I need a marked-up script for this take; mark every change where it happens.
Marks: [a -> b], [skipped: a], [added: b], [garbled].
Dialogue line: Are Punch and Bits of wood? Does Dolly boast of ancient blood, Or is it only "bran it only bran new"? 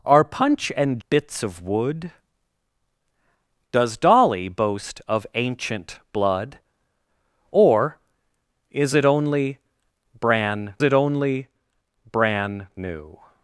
Are Punch and Bits of wood? Does Dolly boast of ancient blood, Or is it only "bran it only bran new"?